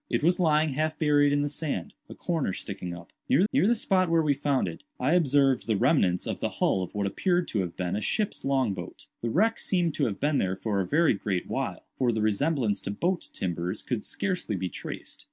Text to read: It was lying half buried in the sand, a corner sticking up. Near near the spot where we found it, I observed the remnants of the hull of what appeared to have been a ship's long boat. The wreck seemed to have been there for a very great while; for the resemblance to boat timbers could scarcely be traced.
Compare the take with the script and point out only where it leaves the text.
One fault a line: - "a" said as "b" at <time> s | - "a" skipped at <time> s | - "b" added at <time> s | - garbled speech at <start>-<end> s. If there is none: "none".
none